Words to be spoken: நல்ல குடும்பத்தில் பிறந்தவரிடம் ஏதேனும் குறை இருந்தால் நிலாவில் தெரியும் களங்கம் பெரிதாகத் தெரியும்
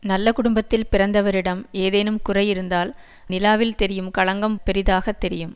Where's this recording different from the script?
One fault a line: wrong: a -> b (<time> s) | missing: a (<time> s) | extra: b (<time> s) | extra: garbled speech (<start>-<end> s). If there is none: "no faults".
no faults